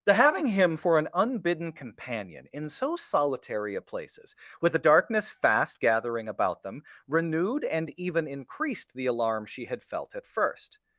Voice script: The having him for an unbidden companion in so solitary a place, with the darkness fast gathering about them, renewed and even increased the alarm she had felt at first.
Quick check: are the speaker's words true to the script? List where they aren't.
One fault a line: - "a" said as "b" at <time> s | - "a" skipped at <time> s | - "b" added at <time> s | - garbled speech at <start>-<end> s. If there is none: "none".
- "place" said as "places" at 3.8 s